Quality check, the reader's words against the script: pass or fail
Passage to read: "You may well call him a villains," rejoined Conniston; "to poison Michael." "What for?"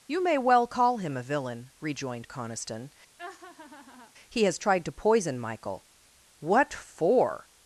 fail